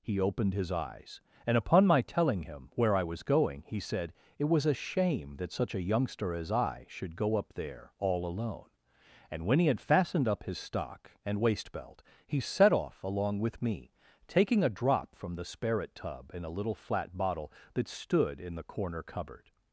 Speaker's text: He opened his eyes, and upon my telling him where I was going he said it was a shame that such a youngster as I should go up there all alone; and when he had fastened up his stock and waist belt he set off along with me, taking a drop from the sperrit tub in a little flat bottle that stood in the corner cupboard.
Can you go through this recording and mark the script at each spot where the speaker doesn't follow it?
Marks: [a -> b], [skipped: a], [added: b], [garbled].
He opened his eyes, and upon my telling him where I was going he said it was a shame that such a youngster as I should go up there all alone; and when he had fastened up his stock and waist belt he set off along with me, taking a drop from the sperrit tub in a little flat bottle that stood in the corner cupboard.